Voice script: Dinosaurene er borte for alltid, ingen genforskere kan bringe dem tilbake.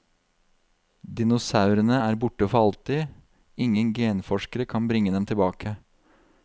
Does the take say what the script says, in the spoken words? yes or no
yes